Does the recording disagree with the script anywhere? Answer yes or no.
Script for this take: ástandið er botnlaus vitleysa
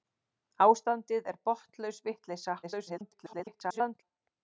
yes